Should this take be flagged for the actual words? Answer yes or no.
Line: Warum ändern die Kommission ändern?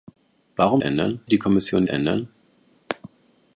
no